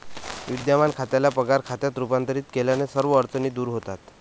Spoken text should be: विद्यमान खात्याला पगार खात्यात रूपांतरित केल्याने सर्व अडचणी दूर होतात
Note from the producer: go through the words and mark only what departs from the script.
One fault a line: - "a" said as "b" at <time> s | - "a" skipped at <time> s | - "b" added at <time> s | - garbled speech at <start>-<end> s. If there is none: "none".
none